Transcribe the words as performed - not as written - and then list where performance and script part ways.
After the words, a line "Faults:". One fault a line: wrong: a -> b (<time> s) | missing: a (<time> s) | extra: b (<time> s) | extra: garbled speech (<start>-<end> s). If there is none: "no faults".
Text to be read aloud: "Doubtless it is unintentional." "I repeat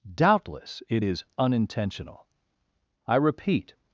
"Doubtless it is unintentional." "I repeat
Faults:
no faults